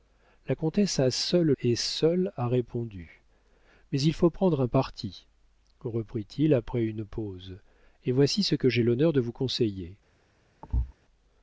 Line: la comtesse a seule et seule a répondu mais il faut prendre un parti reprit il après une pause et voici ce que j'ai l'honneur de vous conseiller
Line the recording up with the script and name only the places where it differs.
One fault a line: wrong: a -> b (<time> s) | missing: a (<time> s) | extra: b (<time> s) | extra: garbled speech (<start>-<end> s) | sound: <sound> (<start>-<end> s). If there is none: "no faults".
sound: thud (10.6-10.9 s)